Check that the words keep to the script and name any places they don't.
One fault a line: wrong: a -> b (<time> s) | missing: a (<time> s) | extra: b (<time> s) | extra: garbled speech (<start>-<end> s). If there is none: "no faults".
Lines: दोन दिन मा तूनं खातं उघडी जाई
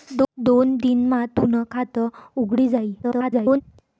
extra: garbled speech (3.0-3.6 s)